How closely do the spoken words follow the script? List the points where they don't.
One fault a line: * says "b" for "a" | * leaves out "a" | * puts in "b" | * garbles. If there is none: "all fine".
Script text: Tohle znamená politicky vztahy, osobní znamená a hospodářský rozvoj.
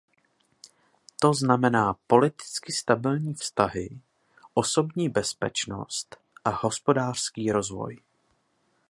* says "To" for "Tohle"
* puts in "stabilní"
* says "bezpečnost" for "znamená"